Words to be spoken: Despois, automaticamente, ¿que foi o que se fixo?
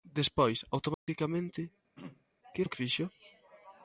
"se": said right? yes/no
no